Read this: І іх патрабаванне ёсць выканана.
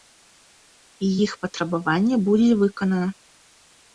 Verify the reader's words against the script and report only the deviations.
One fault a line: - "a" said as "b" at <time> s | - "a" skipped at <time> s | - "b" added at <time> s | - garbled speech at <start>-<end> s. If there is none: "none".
- "ёсць" said as "будзе" at 2.3 s